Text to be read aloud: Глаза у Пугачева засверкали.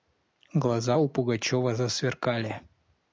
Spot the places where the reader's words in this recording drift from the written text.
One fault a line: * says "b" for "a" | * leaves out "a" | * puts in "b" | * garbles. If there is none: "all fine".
all fine